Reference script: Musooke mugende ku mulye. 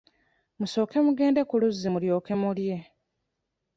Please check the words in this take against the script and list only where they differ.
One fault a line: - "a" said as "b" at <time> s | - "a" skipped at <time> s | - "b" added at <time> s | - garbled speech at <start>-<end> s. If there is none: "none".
- "luzzi mulyoke" added at 1.6 s